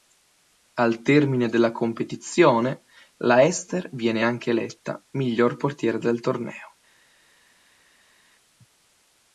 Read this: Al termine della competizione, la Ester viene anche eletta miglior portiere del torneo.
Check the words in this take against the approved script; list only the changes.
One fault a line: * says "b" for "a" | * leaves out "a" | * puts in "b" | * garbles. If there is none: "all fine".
all fine